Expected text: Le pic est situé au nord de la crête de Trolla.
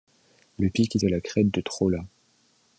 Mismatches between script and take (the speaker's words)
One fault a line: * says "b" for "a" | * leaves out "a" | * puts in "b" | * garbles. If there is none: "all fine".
* leaves out "situé au nord"